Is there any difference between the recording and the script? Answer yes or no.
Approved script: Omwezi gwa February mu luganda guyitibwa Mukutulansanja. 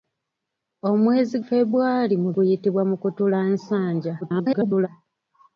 yes